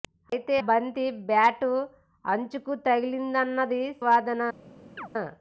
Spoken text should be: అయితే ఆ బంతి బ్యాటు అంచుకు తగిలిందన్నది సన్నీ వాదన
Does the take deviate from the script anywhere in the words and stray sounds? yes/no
yes